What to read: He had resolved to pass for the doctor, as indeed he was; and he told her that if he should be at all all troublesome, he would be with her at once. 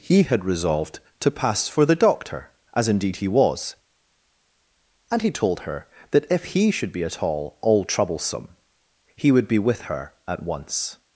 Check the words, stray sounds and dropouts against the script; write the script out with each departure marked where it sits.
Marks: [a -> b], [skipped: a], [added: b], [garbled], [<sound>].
He had resolved to pass for the doctor, as indeed he was; and he told her that if he should be at all all troublesome, he would be with her at once.